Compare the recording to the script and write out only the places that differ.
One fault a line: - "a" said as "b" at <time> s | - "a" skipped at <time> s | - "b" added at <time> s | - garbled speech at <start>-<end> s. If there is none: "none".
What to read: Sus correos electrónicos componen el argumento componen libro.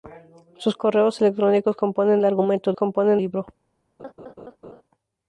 none